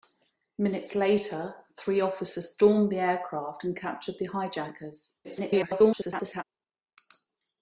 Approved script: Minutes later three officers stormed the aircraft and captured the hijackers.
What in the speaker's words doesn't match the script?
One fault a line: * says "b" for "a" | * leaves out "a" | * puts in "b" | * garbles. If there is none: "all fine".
* garbles